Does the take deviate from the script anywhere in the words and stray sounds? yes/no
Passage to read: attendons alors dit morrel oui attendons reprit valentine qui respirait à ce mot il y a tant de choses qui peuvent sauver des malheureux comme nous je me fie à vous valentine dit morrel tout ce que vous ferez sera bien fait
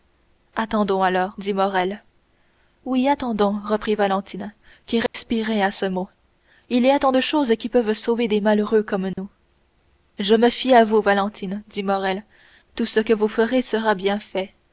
yes